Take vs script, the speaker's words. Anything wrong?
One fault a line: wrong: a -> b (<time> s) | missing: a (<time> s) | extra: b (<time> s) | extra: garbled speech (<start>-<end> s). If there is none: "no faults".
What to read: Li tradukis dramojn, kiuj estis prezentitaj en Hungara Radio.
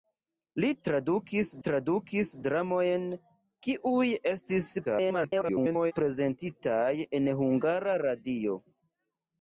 extra: tradukis (1.6 s)
extra: garbled speech (4.8-5.9 s)